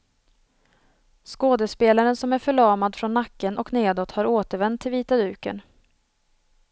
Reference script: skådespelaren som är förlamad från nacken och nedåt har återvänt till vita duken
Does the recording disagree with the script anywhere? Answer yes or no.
no